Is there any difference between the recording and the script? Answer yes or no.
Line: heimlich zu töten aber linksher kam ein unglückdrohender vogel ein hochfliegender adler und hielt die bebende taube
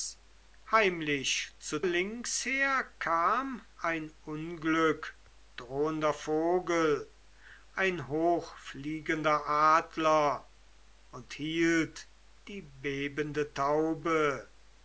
yes